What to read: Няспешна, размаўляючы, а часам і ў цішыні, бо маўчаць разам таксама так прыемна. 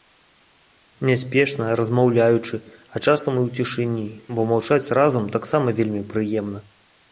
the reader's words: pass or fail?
fail